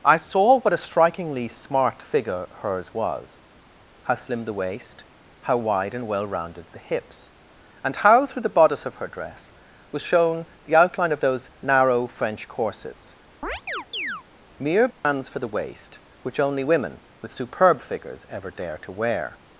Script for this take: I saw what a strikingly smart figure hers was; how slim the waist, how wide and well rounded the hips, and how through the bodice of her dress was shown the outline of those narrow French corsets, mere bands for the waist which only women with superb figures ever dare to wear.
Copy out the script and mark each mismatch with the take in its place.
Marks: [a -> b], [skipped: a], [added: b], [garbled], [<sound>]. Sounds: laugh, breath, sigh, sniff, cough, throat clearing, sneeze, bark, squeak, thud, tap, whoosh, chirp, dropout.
I saw what a strikingly smart figure hers was; how slim the waist, how wide and well rounded the hips, and how through the bodice of her dress was shown the outline of those narrow French corsets, [chirp] mere bands [dropout] for the waist which only women with superb figures ever dare to wear.